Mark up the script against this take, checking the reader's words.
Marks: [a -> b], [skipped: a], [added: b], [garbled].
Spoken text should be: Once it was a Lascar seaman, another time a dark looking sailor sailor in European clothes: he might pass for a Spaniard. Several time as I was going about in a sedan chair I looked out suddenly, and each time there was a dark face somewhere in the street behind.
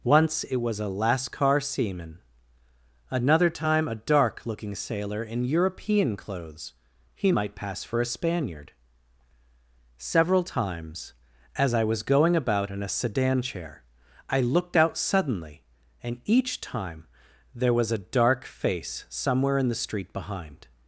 Once it was a Lascar seaman, another time a dark looking sailor [skipped: sailor] in European clothes: he might pass for a Spaniard. Several [time -> times] as I was going about in a sedan chair I looked out suddenly, and each time there was a dark face somewhere in the street behind.